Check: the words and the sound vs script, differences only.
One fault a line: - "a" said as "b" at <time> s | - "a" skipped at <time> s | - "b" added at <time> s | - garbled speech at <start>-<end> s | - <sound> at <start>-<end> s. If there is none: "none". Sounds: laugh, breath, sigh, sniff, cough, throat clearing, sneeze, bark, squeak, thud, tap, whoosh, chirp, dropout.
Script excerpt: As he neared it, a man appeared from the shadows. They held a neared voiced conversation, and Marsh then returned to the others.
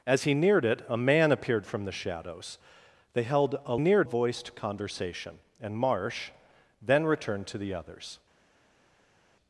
none